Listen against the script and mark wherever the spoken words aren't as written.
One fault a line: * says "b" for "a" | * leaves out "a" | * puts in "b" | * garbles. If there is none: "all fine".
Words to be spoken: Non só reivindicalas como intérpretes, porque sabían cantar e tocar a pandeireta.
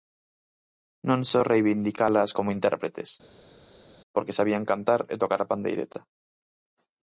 all fine